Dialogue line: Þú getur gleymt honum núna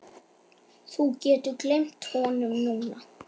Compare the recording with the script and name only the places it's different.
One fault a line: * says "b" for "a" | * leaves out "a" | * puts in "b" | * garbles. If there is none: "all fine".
all fine